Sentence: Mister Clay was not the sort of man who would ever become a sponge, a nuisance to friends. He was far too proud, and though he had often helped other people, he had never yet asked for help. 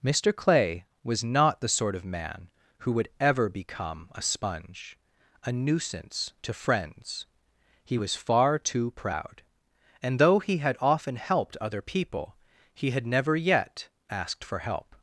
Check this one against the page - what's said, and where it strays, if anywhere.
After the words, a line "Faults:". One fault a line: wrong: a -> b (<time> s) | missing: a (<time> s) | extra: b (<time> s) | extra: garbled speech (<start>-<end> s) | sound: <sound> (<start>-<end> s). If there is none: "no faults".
Mister Clay was not the sort of man who would ever become a sponge, a nuisance to friends. He was far too proud, and though he had often helped other people, he had never yet asked for help.
Faults:
no faults